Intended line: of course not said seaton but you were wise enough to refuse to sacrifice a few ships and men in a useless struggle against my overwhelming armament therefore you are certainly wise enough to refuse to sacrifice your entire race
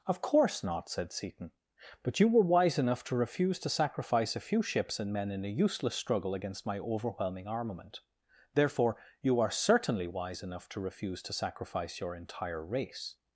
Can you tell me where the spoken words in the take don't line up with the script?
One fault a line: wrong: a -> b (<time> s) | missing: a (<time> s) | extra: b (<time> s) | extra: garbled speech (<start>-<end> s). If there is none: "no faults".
no faults